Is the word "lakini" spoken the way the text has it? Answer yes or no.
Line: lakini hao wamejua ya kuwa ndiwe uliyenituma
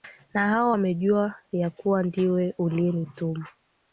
no